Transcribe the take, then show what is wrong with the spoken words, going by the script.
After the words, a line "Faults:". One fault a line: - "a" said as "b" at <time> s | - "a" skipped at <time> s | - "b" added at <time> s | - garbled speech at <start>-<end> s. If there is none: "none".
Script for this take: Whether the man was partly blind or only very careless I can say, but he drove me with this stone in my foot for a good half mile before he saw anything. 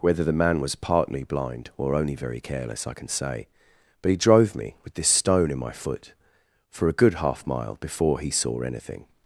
Whether the man was partly blind or only very careless I can say, but he drove me with this stone in my foot for a good half mile before he saw anything.
Faults:
none